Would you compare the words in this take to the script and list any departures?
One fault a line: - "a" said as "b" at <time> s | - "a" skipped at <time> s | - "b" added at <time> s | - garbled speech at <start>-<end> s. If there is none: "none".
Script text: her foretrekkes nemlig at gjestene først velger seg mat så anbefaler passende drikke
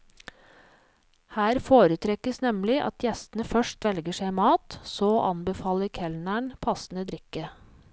- "kelneren" added at 6.0 s